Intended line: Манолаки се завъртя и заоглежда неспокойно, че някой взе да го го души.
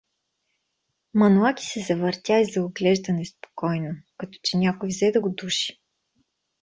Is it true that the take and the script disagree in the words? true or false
true